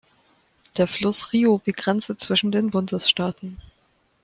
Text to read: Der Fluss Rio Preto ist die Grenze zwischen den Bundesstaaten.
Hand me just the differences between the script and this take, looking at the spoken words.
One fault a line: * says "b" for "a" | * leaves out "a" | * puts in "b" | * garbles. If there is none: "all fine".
* leaves out "Preto ist"